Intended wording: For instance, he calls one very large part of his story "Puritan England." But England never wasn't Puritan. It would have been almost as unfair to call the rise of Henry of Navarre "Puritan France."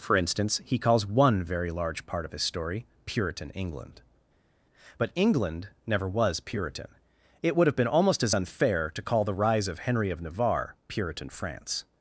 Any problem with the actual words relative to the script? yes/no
yes